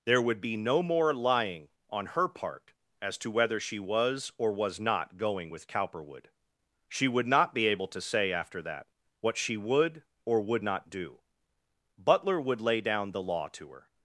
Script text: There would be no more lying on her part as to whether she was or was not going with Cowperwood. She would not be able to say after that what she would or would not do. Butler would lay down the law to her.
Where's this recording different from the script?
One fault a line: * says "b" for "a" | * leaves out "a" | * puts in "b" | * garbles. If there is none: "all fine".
all fine